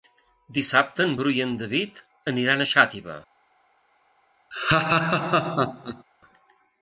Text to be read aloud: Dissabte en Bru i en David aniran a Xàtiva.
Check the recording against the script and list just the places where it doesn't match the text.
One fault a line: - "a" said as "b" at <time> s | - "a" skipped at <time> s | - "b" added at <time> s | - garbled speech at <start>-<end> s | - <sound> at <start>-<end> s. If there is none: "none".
- laugh at 4.5-6.0 s